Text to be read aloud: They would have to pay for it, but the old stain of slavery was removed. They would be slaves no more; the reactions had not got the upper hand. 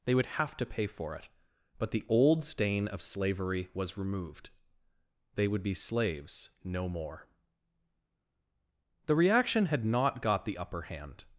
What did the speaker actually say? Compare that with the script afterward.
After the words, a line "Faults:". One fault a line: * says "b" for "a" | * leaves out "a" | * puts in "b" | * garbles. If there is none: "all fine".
They would have to pay for it, but the old stain of slavery was removed. They would be slaves no more; the reaction had not got the upper hand.
Faults:
* says "reaction" for "reactions"